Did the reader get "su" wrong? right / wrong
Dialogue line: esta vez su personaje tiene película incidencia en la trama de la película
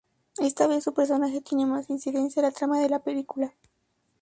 right